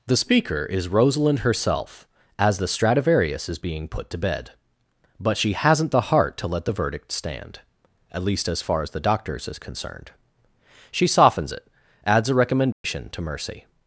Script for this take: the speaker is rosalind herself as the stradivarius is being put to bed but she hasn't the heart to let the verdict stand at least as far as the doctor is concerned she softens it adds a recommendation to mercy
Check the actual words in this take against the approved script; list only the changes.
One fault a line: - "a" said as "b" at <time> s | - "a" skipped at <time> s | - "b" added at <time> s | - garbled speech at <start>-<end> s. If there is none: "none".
- "doctor" said as "doctors" at 9.0 s